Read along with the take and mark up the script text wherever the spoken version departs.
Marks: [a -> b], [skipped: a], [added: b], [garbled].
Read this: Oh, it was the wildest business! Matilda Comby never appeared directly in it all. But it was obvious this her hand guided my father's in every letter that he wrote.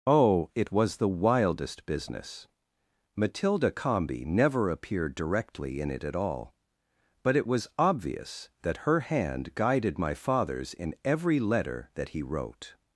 Oh, it was the wildest business! Matilda Comby never appeared directly in it [added: at] all. But it was obvious [this -> that] her hand guided my father's in every letter that he wrote.